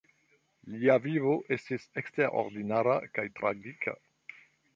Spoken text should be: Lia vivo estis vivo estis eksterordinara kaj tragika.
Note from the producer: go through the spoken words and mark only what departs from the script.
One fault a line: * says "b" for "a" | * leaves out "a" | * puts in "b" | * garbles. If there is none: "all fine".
* leaves out "vivo estis"